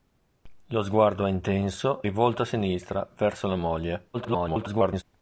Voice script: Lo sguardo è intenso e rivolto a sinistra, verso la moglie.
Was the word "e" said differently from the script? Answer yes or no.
yes